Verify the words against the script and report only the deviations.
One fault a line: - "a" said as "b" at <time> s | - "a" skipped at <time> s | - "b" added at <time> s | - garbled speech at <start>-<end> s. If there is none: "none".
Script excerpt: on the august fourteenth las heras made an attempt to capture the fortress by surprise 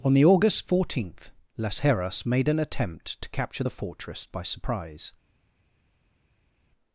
none